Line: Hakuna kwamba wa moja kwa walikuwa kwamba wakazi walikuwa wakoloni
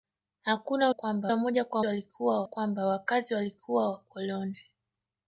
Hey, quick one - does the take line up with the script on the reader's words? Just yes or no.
yes